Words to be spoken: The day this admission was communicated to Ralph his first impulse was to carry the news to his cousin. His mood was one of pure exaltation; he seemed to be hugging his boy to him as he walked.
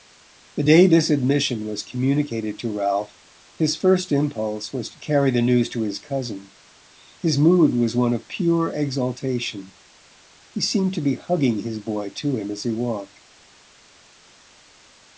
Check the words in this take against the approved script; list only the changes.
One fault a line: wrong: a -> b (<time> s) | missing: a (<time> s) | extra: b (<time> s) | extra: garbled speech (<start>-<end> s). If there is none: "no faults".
no faults